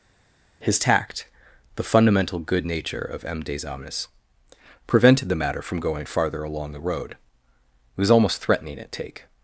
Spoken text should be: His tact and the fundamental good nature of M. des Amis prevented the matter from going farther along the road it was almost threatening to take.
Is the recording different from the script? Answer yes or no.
yes